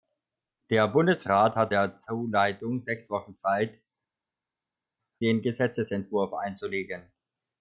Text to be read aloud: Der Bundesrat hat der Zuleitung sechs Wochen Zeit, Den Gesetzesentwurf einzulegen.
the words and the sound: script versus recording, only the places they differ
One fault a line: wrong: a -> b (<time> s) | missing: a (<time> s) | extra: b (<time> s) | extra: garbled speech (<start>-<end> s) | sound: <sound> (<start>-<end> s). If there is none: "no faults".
no faults